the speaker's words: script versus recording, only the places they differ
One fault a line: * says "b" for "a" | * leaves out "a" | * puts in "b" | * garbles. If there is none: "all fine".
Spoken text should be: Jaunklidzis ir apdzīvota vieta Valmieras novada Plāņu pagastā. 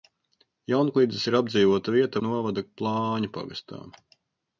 * leaves out "Valmieras"